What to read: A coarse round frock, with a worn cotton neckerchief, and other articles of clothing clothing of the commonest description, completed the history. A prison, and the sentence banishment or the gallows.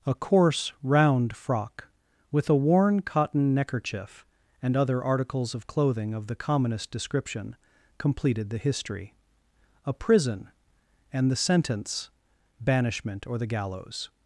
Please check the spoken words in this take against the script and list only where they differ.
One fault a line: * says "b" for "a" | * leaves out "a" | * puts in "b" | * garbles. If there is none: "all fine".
* leaves out "clothing"